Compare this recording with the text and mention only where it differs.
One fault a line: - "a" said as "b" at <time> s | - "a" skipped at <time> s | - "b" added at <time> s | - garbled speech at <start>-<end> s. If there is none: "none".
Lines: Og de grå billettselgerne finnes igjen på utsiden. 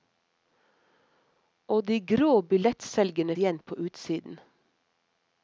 - "finnes" skipped at 3.4 s